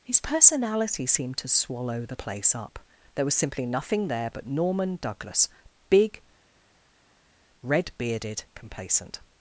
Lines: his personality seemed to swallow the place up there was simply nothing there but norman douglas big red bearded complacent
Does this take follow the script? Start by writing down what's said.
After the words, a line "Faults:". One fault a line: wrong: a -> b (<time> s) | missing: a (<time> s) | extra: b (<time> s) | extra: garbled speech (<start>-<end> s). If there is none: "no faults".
his personality seemed to swallow the place up there was simply nothing there but norman douglas big red bearded complacent
Faults:
no faults